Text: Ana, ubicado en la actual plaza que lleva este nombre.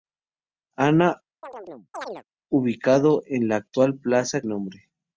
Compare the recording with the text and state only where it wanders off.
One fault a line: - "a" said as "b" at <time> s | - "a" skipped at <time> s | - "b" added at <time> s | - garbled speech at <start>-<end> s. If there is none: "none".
- "que lleva este" skipped at 4.4 s